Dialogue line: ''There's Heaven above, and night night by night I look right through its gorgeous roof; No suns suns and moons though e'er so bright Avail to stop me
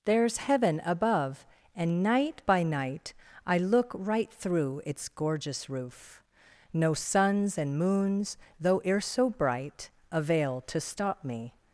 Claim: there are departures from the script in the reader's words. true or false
true